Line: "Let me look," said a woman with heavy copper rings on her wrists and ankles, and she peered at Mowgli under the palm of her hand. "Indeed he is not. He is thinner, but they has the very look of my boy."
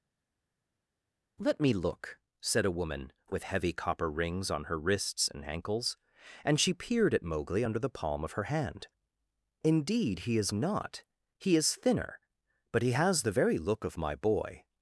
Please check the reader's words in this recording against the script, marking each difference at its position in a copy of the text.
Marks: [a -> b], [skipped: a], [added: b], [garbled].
"Let me look," said a woman with heavy copper rings on her wrists and ankles, and she peered at Mowgli under the palm of her hand. "Indeed he is not. He is thinner, but [they -> he] has the very look of my boy."